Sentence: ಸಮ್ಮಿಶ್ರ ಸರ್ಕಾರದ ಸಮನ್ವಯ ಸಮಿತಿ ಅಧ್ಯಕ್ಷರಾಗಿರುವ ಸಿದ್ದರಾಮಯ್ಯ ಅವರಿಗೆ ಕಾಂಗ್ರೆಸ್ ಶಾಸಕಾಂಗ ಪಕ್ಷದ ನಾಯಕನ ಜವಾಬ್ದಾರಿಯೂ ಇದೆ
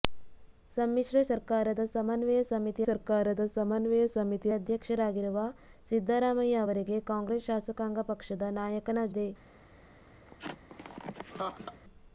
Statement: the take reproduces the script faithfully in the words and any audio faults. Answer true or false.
false